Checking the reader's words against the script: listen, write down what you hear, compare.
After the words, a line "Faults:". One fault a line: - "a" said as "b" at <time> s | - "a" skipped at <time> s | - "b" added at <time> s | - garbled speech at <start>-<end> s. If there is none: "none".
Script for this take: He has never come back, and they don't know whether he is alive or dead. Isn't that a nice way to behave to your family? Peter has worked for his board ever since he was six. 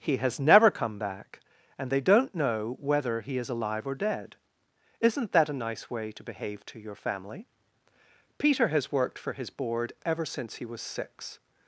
He has never come back, and they don't know whether he is alive or dead. Isn't that a nice way to behave to your family? Peter has worked for his board ever since he was six.
Faults:
none